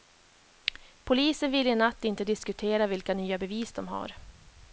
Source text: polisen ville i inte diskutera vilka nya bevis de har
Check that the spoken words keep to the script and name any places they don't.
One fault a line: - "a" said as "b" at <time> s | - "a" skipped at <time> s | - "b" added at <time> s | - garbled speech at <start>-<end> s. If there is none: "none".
- "natt" added at 1.8 s